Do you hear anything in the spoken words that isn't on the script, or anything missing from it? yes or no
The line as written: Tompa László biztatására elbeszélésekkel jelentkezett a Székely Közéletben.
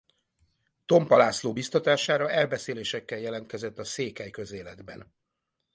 no